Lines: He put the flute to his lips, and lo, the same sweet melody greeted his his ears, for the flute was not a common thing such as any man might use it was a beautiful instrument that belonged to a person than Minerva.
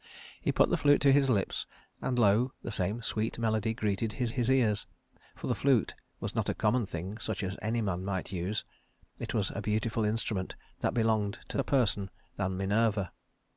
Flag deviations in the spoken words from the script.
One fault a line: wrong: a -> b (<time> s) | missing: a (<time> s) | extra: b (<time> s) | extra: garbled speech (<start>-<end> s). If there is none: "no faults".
no faults